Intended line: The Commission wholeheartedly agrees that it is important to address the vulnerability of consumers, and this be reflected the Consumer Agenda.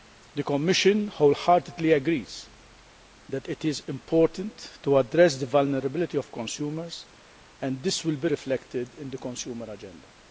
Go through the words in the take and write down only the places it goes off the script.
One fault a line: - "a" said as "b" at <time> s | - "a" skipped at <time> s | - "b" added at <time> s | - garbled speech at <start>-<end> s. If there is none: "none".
- "will" added at 8.0 s
- "in" added at 9.0 s